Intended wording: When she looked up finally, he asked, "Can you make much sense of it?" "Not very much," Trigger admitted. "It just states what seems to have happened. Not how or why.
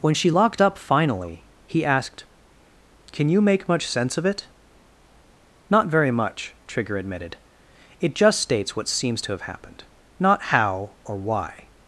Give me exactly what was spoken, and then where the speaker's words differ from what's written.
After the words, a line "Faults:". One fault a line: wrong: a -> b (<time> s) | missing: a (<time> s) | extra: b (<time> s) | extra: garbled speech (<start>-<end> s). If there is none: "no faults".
When she locked up finally, he asked, "Can you make much sense of it?" "Not very much," Trigger admitted. "It just states what seems to have happened. Not how or why.
Faults:
wrong: looked -> locked (0.3 s)